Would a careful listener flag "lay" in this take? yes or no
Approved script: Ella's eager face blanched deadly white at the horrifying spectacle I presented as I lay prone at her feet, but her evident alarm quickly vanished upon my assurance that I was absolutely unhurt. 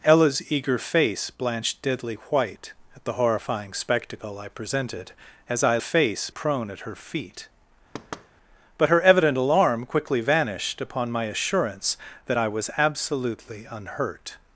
yes